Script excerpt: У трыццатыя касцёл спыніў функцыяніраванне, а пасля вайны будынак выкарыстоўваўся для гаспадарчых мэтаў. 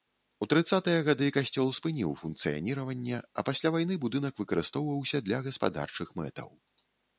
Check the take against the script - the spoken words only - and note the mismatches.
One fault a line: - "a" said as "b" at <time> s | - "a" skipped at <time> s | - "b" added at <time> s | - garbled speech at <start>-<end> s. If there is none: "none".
- "гады" added at 1.1 s